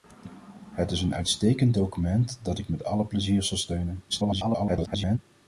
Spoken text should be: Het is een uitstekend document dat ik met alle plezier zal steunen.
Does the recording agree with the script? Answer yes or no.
no